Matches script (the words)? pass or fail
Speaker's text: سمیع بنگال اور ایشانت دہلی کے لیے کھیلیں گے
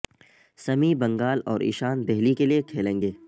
pass